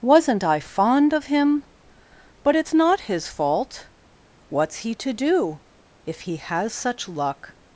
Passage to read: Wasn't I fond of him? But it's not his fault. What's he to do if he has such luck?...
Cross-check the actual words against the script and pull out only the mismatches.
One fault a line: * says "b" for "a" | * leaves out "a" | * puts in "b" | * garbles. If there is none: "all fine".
all fine